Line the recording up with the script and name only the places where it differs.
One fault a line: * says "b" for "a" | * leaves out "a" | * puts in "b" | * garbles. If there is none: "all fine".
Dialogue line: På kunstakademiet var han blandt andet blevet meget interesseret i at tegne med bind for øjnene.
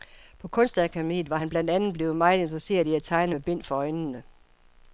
all fine